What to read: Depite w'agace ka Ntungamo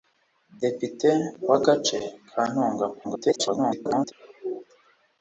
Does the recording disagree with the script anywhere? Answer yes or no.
yes